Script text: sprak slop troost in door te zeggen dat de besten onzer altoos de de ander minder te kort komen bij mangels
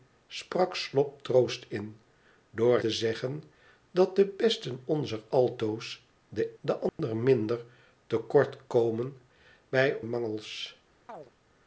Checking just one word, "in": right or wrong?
right